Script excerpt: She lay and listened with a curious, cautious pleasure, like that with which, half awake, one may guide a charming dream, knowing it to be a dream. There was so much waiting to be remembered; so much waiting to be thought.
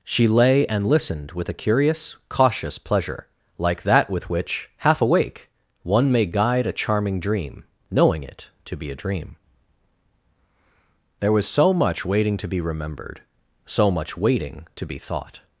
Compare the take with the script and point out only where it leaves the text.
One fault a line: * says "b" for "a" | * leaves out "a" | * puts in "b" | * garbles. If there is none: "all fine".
all fine